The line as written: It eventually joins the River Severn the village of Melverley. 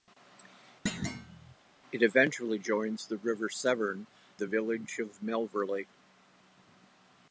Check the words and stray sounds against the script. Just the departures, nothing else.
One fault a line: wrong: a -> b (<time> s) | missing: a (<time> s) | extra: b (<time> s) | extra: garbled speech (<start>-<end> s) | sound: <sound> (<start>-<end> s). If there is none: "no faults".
sound: thud (0.9-1.6 s)